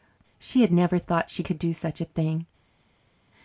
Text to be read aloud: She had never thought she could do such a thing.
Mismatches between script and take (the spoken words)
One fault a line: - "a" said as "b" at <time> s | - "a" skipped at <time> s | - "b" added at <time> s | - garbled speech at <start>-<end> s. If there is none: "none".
none